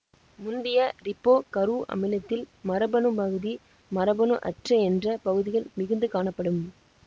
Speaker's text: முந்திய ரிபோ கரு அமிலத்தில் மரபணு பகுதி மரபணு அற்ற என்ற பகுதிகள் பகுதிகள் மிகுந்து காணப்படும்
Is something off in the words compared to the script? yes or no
yes